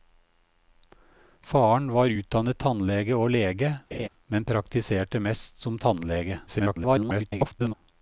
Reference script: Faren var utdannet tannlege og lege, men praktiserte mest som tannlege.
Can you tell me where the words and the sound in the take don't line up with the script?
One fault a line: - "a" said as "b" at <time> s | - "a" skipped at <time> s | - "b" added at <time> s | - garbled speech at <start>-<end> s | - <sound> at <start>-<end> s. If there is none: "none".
- laugh at 3.9-4.1 s
- garbled speech at 6.5-7.7 s